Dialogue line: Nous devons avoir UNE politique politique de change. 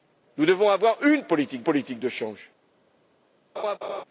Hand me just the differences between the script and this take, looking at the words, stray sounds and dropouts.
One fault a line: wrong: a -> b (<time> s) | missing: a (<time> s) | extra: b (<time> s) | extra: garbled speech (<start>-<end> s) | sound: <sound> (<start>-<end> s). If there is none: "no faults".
sound: laugh (3.6-4.0 s)